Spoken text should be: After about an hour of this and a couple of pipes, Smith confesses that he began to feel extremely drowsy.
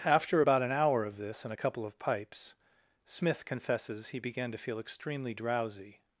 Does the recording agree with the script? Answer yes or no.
no